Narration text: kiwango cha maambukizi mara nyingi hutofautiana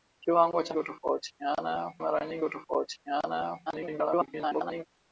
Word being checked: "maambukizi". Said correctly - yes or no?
no